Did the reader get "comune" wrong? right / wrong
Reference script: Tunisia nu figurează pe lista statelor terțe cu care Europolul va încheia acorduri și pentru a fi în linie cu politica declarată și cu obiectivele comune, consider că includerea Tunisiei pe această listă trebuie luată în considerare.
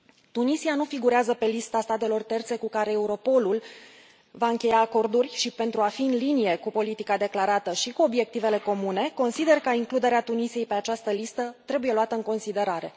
right